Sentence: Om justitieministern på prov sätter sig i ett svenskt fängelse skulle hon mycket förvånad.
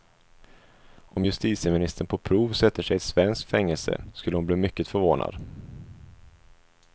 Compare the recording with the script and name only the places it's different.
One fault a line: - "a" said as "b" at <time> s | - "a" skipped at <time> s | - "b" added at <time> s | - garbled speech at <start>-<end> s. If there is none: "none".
- "bli" added at 4.5 s